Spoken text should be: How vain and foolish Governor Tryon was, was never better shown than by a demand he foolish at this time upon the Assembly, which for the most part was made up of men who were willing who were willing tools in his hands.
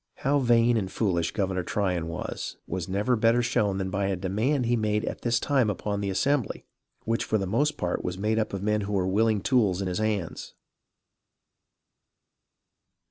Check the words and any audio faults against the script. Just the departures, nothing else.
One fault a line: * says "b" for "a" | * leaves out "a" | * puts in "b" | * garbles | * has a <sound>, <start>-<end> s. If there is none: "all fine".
* says "made" for "foolish"
* leaves out "who were willing"